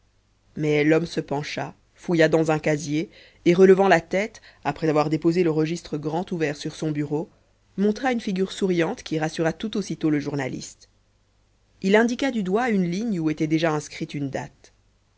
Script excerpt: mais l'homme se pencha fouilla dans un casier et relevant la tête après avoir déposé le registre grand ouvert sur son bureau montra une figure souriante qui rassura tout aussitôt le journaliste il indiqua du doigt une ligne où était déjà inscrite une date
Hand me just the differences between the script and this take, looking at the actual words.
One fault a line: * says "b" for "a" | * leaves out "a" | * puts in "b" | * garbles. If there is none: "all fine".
all fine